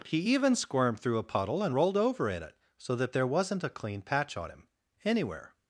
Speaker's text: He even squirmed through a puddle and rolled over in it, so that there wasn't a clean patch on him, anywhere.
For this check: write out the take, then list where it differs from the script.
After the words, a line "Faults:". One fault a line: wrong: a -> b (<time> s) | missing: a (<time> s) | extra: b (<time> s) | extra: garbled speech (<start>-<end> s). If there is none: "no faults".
He even squirmed through a puddle and rolled over in it, so that there wasn't a clean patch on him, anywhere.
Faults:
no faults